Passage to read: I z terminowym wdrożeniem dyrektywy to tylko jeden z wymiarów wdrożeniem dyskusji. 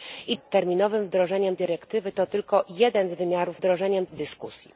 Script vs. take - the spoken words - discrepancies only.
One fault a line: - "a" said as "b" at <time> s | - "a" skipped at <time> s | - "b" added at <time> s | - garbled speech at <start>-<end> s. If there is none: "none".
none